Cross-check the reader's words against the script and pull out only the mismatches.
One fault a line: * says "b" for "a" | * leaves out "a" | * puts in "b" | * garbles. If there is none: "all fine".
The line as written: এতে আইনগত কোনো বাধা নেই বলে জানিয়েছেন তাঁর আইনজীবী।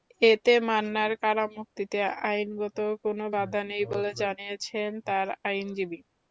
* puts in "মান্নার কারামুক্তিতে"